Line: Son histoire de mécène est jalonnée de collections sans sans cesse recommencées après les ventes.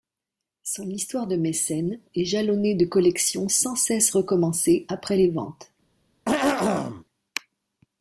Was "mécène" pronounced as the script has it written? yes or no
yes